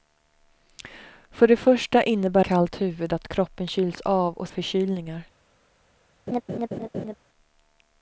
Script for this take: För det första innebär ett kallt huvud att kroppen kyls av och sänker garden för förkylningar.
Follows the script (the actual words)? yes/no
no